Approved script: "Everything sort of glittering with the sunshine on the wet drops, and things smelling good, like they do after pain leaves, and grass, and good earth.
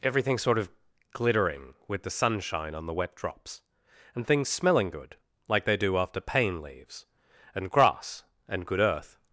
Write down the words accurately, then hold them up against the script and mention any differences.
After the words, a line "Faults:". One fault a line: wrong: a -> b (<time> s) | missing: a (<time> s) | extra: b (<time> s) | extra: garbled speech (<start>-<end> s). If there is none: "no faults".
"Everything sort of glittering with the sunshine on the wet drops, and things smelling good, like they do after pain leaves, and grass, and good earth.
Faults:
no faults